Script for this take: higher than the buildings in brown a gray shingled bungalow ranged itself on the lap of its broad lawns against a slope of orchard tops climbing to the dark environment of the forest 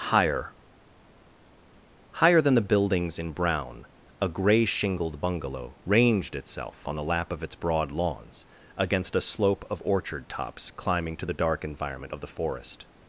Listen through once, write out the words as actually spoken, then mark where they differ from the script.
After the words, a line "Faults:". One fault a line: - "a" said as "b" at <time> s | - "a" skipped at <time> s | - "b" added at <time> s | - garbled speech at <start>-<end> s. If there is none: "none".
higher higher than the buildings in brown a gray shingled bungalow ranged itself on the lap of its broad lawns against a slope of orchard tops climbing to the dark environment of the forest
Faults:
- "higher" added at 2.1 s